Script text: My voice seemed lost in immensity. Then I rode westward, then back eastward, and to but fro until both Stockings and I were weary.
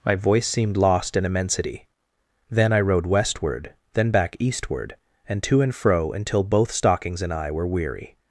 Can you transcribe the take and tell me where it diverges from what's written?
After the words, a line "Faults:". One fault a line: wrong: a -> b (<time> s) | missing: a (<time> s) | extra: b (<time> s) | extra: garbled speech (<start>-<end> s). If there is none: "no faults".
My voice seemed lost in immensity. Then I rode westward, then back eastward, and to and fro until both Stockings and I were weary.
Faults:
wrong: but -> and (5.6 s)